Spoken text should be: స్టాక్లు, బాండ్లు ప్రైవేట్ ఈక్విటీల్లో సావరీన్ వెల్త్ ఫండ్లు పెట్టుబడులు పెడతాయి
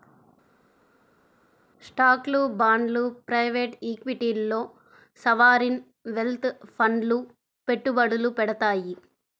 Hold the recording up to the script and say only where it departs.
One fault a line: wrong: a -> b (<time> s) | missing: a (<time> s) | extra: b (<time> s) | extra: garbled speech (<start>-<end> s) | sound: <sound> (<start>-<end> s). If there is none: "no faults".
no faults